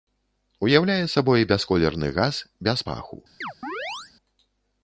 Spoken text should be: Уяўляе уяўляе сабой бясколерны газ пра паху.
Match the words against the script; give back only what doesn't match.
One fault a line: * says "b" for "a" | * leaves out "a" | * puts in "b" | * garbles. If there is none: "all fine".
* leaves out "уяўляе"
* says "без" for "пра"